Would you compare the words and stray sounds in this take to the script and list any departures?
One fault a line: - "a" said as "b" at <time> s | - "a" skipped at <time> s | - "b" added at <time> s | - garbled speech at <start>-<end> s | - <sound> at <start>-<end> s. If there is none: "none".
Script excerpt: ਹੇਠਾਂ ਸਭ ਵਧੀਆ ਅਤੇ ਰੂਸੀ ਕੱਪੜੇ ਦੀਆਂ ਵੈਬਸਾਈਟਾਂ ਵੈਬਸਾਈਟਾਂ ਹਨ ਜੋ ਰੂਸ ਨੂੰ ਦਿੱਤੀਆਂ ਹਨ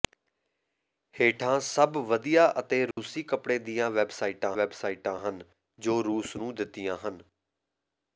- dropout at 2.9-3.0 s